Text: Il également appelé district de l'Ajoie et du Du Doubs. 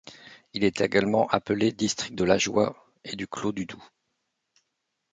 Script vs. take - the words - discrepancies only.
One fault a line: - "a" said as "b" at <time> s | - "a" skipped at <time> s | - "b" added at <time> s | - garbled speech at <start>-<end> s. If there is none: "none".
- "est" added at 0.6 s
- "Clos" added at 3.3 s